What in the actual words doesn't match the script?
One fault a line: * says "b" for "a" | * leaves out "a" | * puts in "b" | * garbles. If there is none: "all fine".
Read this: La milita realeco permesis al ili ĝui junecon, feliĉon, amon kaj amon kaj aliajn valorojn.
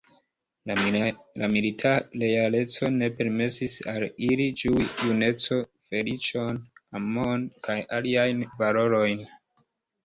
* puts in "ne"
* leaves out "amon kaj"